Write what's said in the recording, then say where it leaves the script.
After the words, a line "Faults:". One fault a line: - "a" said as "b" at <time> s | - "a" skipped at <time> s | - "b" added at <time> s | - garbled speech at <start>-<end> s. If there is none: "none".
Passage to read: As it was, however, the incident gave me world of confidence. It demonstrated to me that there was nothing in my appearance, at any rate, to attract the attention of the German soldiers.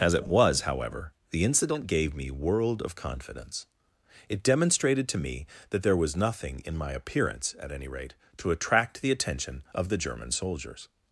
As it was, however, the incident gave me world of confidence. It demonstrated to me that there was nothing in my appearance, at any rate, to attract the attention of the German soldiers.
Faults:
none